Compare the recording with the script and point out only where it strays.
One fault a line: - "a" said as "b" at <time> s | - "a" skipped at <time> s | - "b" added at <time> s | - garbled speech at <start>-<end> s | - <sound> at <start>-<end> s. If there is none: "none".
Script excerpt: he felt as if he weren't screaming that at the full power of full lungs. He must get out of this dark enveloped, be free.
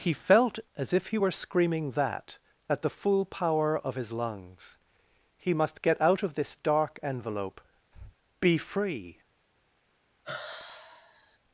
- "weren't" said as "were" at 1.2 s
- "full" said as "his" at 4.0 s
- "enveloped" said as "envelope" at 7.0 s
- breath at 7.9-8.2 s
- sigh at 10.2-11.4 s